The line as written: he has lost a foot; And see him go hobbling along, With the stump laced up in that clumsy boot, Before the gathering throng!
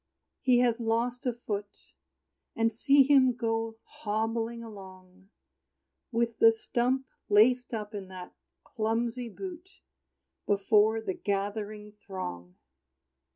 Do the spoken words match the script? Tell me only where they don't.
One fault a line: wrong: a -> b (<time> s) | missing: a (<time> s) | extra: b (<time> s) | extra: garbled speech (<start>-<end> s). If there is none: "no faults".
no faults